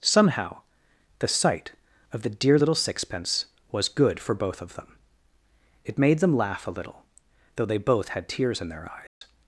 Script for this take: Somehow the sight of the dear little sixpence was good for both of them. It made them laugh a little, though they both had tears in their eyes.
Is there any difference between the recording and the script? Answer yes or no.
no